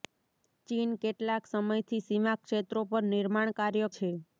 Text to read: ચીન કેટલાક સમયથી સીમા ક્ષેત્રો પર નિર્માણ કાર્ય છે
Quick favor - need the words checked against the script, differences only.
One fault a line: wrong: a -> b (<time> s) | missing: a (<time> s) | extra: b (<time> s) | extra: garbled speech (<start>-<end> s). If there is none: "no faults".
no faults